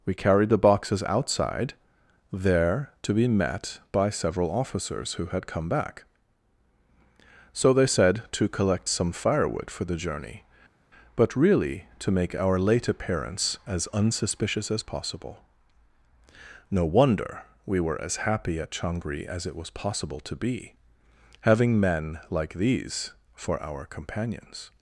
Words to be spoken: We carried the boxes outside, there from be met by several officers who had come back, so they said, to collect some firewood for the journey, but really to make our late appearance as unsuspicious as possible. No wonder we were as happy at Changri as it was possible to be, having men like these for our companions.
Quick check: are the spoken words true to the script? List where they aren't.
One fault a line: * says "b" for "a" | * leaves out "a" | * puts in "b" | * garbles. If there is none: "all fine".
* says "to" for "from"